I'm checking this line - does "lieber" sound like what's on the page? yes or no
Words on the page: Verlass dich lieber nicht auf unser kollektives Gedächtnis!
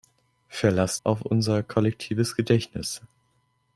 no